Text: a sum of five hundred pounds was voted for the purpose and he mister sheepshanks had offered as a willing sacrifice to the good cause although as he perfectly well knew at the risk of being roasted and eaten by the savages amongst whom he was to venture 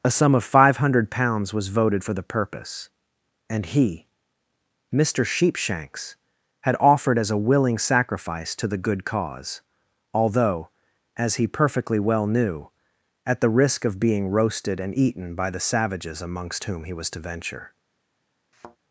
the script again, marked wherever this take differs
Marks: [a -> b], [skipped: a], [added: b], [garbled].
a sum of five hundred pounds was voted for the purpose and he mister sheepshanks had offered as a willing sacrifice to the good cause although as he perfectly well knew at the risk of being roasted and eaten by the savages amongst whom he was to venture